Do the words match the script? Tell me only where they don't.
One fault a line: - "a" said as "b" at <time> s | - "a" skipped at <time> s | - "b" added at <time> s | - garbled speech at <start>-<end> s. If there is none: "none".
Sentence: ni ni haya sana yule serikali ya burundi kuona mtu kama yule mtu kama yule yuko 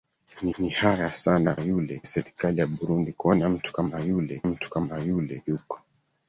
none